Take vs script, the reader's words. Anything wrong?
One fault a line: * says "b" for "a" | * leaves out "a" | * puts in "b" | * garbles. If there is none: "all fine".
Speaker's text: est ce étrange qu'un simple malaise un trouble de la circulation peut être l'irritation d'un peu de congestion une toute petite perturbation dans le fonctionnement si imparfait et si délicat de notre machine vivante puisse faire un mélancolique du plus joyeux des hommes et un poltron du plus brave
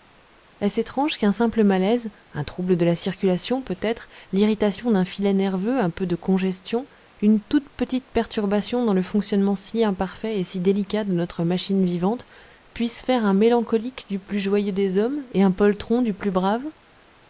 * puts in "filet nerveux un"